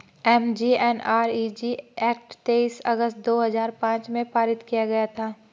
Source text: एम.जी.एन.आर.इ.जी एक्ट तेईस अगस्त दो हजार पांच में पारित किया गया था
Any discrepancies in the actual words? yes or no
no